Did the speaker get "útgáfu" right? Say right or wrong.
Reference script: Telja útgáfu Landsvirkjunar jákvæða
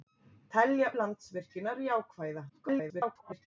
wrong